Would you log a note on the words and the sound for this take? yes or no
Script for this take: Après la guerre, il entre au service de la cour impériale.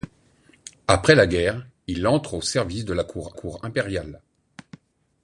yes